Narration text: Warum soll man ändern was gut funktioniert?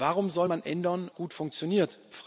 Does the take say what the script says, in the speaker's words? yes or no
no